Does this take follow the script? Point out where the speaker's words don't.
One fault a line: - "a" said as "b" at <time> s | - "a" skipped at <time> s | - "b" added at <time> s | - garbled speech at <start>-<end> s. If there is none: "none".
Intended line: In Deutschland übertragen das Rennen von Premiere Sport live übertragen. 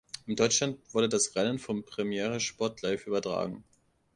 - "übertragen" said as "wurde" at 0.9 s